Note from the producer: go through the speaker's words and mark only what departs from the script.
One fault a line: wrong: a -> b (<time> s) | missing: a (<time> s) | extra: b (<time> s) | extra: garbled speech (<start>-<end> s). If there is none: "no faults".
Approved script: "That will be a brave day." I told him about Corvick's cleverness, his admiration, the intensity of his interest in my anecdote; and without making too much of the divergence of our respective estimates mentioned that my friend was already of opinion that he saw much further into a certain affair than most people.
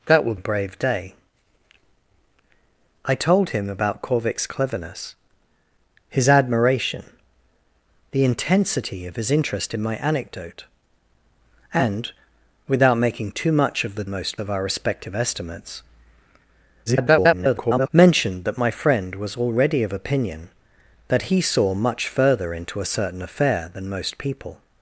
missing: be (0.3 s)
wrong: divergence -> most (14.1 s)
extra: garbled speech (16.9-17.9 s)